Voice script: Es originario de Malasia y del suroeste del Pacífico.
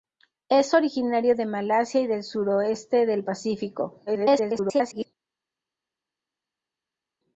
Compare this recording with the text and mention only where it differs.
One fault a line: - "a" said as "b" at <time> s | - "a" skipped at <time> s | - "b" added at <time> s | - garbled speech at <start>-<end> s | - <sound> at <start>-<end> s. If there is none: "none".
- garbled speech at 4.1-5.1 s